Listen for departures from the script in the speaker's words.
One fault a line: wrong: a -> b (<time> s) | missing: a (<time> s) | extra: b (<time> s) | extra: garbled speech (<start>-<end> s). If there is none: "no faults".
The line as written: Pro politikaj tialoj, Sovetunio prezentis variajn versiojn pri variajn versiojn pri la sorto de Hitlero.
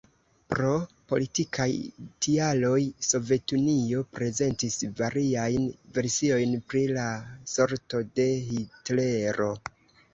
missing: variajn versiojn pri (6.9 s)